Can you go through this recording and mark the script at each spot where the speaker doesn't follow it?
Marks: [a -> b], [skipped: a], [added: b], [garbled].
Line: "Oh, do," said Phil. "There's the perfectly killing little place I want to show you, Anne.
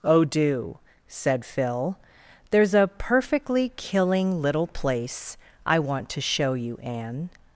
"Oh, do," said Phil. "There's [the -> a] perfectly killing little place I want to show you, Anne.